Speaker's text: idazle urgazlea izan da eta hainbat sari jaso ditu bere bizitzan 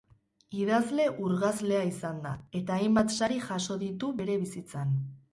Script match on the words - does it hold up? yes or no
yes